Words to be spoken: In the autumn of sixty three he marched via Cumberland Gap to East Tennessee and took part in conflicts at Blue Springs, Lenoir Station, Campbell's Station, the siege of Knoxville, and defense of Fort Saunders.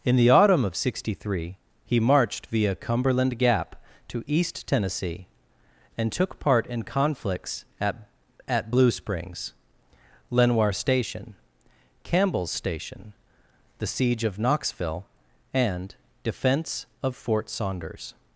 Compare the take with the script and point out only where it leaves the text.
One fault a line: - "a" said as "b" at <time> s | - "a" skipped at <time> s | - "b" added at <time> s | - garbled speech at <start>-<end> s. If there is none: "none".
- "at" added at 8.5 s